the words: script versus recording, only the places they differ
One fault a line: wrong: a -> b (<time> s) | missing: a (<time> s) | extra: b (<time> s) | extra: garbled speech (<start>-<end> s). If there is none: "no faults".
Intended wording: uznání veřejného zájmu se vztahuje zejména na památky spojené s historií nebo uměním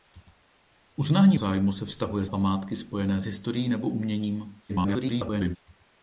missing: veřejného (1.4 s)
missing: zejména na (2.3 s)
extra: garbled speech (4.7-5.6 s)